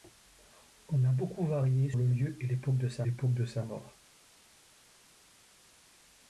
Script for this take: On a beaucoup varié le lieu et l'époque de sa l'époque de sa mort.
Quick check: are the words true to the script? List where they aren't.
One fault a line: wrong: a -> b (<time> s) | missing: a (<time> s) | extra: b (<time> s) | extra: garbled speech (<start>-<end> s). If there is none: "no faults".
no faults